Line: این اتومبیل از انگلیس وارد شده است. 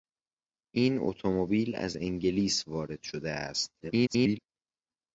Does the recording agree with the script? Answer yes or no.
no